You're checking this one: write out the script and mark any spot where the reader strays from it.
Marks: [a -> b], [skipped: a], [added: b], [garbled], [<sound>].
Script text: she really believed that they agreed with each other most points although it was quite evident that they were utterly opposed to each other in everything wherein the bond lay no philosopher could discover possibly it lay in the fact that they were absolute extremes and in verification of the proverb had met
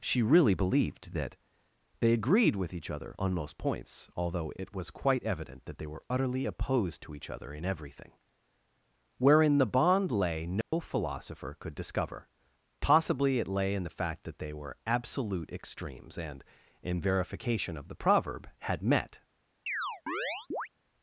she really believed that they agreed with each other [added: on] most points although it was quite evident that they were utterly opposed to each other in everything wherein the bond lay no [dropout] philosopher could discover possibly it lay in the fact that they were absolute extremes and in verification of the proverb had met [chirp]